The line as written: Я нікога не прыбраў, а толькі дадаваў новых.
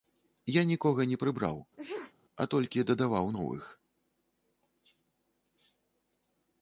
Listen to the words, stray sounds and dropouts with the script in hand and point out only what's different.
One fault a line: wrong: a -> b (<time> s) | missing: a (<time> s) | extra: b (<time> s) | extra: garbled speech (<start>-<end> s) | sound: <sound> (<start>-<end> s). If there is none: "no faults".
sound: sneeze (1.8-2.1 s)